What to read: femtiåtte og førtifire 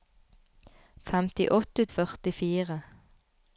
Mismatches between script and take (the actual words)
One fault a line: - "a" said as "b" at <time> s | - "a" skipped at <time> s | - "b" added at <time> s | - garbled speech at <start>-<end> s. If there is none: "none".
none